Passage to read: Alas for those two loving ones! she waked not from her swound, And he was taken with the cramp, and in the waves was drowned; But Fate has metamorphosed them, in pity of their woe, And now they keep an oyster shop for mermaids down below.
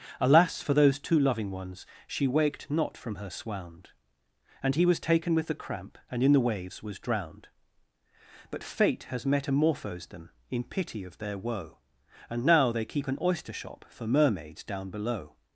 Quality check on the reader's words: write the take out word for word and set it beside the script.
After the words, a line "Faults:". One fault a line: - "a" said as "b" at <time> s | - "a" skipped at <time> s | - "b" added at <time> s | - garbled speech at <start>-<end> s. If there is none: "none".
Alas for those two loving ones! she waked not from her swound, And he was taken with the cramp, and in the waves was drowned; But Fate has metamorphosed them, in pity of their woe, And now they keep an oyster shop for mermaids down below.
Faults:
none